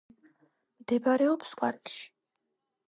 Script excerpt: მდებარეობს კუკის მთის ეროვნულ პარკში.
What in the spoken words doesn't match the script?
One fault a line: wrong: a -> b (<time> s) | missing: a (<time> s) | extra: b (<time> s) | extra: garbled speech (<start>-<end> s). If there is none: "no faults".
missing: კუკის მთის ეროვნულ (1.5 s)